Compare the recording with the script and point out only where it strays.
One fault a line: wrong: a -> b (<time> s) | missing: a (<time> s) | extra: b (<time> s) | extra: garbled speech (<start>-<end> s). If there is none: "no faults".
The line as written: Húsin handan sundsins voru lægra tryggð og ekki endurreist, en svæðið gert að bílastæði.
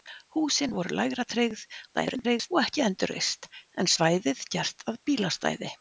missing: handan sundsins (0.7 s)
extra: garbled speech (1.9-2.5 s)